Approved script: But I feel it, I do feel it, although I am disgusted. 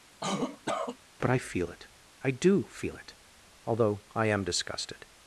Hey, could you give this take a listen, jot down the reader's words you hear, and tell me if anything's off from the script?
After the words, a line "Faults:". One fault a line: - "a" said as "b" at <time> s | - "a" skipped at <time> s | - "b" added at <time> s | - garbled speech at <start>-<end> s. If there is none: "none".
But I feel it, I do feel it, although I am disgusted.
Faults:
none